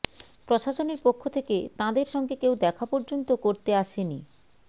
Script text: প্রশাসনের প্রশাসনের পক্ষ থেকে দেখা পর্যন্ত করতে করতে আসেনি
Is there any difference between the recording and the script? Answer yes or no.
yes